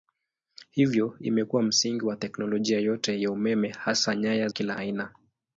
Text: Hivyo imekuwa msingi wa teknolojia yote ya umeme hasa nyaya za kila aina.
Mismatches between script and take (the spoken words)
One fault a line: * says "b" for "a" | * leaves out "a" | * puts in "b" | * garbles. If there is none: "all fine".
* leaves out "za"